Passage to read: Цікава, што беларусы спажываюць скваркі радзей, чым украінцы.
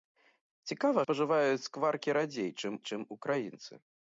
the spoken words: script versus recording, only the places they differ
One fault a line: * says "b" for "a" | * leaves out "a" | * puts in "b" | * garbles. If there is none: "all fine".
* leaves out "што беларусы"
* puts in "чым"